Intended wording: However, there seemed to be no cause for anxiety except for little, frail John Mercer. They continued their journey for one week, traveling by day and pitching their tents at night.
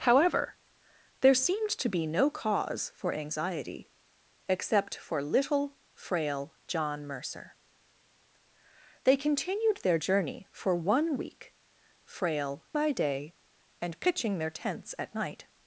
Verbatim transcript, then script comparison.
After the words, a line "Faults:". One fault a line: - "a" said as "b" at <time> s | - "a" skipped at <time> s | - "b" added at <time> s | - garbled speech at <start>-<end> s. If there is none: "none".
However, there seemed to be no cause for anxiety except for little, frail John Mercer. They continued their journey for one week, frail by day and pitching their tents at night.
Faults:
- "traveling" said as "frail" at 12.0 s